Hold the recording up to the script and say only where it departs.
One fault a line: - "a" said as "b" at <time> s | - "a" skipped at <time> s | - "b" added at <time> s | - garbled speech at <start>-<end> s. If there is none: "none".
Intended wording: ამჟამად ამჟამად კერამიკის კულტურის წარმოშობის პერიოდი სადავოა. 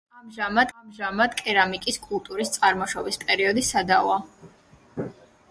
none